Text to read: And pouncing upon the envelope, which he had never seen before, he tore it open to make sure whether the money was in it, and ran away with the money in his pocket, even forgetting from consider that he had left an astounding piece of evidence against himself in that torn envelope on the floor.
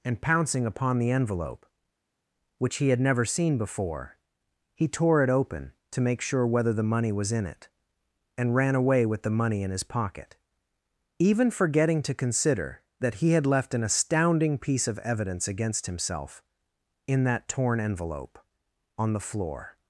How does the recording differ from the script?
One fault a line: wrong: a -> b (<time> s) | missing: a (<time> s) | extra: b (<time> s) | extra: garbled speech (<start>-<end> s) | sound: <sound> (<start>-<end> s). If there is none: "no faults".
wrong: from -> to (12.0 s)